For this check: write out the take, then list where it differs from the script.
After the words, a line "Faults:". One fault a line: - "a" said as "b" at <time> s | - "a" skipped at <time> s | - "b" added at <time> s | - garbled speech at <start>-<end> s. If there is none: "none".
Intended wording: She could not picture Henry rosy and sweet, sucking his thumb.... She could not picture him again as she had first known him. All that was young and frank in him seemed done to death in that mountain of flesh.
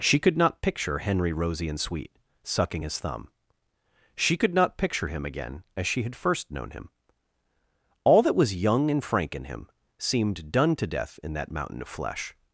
She could not picture Henry rosy and sweet, sucking his thumb.... She could not picture him again as she had first known him. All that was young and frank in him seemed done to death in that mountain of flesh.
Faults:
none